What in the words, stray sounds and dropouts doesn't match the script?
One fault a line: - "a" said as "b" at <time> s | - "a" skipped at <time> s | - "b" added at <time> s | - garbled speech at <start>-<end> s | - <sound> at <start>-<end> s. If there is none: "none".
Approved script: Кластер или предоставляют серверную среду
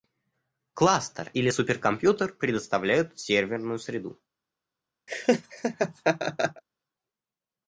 - "суперкомпьютер" added at 1.5 s
- laugh at 5.1-6.6 s